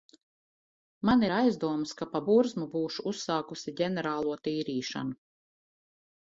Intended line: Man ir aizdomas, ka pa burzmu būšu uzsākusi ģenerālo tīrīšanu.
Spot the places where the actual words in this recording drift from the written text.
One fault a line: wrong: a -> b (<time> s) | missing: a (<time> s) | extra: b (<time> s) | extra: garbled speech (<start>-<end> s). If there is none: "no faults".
no faults